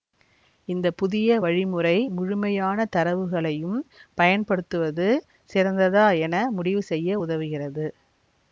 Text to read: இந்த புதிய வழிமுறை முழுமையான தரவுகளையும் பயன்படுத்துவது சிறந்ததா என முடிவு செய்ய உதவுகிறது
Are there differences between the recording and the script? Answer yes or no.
no